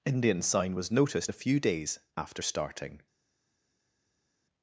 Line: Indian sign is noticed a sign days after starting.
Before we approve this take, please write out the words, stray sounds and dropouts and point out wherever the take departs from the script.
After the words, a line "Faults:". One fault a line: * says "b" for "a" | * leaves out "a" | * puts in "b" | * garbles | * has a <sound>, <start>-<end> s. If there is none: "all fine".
Indian sign was noticed a few days after starting.
Faults:
* says "was" for "is"
* says "few" for "sign"